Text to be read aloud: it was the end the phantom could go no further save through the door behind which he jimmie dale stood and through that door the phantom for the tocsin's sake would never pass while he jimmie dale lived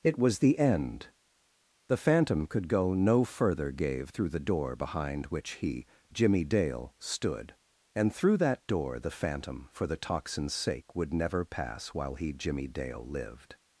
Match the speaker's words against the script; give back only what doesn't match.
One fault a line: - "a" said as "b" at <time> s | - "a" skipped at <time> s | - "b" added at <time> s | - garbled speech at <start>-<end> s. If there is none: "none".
- "save" said as "gave" at 3.7 s